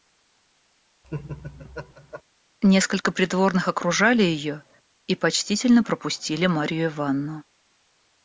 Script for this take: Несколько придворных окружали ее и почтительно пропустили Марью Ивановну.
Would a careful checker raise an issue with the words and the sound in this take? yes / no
yes